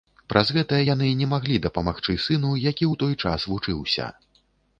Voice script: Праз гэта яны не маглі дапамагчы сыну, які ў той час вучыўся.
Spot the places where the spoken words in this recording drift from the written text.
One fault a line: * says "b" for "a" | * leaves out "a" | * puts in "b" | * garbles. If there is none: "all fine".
all fine